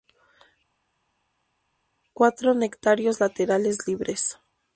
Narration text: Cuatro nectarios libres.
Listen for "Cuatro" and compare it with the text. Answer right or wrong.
right